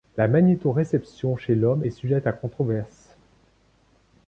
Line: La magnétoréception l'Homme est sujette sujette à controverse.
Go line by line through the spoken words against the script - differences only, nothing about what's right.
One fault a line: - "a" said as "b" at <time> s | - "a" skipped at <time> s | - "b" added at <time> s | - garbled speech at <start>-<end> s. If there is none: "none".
- "chez" added at 1.4 s
- "sujette" skipped at 2.3 s